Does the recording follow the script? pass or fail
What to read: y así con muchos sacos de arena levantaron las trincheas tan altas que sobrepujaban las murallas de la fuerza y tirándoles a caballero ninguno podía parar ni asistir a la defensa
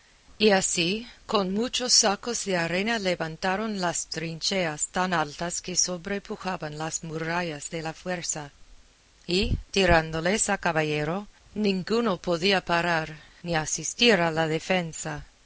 pass